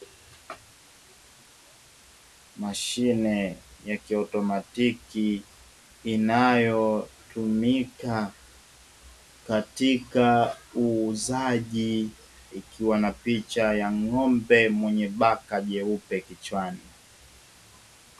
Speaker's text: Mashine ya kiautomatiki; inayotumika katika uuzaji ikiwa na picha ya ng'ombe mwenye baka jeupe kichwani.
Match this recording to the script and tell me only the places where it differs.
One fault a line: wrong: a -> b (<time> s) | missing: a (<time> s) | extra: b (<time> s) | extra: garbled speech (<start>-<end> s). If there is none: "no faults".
no faults